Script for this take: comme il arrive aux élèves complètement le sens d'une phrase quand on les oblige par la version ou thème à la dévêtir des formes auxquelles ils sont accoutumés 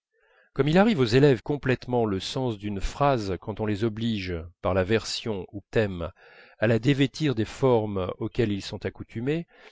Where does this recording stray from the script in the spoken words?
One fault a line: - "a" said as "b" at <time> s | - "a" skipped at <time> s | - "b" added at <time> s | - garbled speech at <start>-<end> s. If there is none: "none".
none